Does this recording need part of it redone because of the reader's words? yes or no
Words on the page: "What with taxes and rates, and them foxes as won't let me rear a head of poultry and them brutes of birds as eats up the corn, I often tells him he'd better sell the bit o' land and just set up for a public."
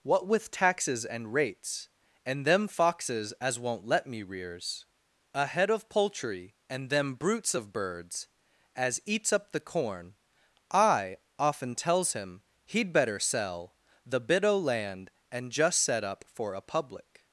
yes